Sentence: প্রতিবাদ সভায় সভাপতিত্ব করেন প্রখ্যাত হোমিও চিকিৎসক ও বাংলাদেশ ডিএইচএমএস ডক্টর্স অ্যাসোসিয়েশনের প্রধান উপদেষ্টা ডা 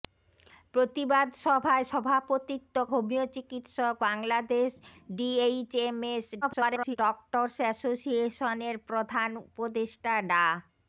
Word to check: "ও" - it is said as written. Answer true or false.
false